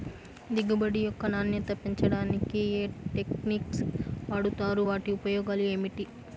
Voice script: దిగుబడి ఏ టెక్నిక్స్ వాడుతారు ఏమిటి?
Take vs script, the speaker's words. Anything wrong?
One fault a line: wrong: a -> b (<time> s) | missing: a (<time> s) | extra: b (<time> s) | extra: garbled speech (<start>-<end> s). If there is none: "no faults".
extra: యొక్క నాణ్యత పెంచడానికి (1.0 s)
extra: వాటి ఉపయోగాలు (4.9 s)